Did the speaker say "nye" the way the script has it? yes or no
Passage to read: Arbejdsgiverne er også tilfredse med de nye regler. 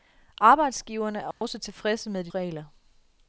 no